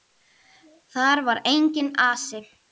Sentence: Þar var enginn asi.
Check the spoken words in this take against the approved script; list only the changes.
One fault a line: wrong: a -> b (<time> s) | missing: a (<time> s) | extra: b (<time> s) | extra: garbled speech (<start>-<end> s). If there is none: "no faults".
no faults